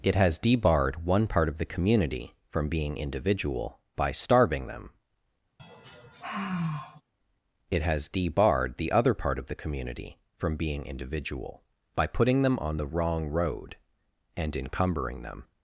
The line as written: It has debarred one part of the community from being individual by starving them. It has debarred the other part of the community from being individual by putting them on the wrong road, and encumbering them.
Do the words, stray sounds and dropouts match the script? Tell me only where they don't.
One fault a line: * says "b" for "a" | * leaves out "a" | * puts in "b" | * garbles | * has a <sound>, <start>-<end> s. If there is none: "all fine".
* has a sigh, 5.6-7.0 s